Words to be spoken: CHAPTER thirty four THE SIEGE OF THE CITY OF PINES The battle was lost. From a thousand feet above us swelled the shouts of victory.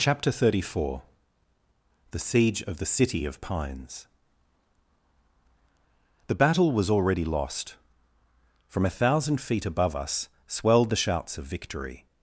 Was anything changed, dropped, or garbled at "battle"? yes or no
no